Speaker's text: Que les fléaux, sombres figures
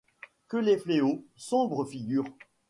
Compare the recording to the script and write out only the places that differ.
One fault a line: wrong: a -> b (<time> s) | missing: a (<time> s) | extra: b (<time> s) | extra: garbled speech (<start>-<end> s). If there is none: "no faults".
no faults